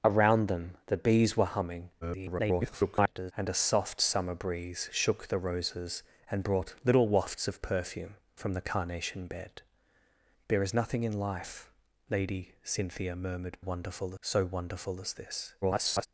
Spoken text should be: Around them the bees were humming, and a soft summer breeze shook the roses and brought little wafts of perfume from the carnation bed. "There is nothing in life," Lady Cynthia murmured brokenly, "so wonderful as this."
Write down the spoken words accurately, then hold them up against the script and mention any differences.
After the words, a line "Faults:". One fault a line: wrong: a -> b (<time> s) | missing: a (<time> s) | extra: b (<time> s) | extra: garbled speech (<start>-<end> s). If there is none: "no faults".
Around them the bees were humming, [garbled] and a soft summer breeze shook the roses and brought little wafts of perfume from the carnation bed. "There is nothing in life," Lady Cynthia murmured wonderful, "so wonderful as this." [garbled]
Faults:
extra: garbled speech (2.0-3.3 s)
wrong: brokenly -> wonderful (13.6 s)
extra: garbled speech (15.6-16.1 s)